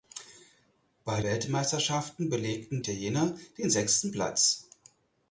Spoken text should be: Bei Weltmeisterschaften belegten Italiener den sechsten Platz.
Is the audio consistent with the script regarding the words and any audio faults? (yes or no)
yes